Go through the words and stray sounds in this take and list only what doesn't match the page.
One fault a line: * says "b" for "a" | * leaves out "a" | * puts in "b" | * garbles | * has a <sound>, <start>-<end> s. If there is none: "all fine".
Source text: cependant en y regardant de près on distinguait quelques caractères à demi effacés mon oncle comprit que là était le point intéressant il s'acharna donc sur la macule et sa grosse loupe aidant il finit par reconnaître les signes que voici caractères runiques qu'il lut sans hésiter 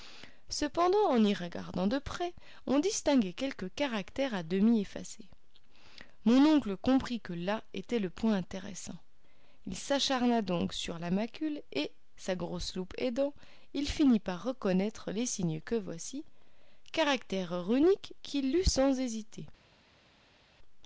all fine